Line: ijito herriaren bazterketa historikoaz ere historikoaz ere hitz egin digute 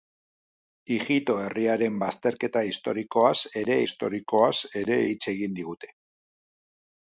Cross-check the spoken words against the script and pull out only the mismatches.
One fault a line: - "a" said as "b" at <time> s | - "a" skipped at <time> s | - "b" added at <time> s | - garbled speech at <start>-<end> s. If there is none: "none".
none